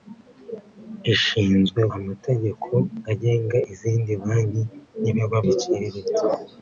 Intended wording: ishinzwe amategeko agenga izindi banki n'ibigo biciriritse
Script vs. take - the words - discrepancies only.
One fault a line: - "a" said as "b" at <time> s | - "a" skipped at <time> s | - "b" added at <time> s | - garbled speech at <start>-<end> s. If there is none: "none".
none